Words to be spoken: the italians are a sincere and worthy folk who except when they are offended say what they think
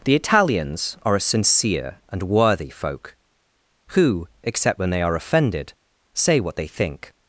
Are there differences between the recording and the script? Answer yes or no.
no